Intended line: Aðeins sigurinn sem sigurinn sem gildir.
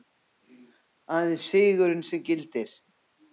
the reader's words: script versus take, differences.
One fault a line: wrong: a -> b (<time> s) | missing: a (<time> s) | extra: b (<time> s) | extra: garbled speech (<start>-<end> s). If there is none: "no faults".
missing: sigurinn sem (2.2 s)